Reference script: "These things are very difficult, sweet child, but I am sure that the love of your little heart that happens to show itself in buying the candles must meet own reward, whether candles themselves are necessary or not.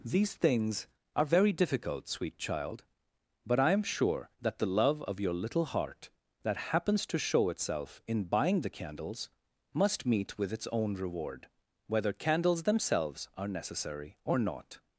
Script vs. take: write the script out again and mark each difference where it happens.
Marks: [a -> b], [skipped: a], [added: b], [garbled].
"These things are very difficult, sweet child, but I am sure that the love of your little heart that happens to show itself in buying the candles must meet [added: with its] own reward, whether candles themselves are necessary or not.